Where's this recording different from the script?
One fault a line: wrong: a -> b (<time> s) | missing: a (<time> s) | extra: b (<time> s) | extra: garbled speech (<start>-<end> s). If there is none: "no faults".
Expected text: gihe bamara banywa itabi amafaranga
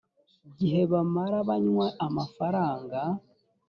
missing: itabi (1.9 s)